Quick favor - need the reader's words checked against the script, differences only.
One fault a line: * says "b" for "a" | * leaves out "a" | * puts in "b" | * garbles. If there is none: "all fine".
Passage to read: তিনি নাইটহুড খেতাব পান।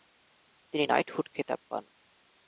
all fine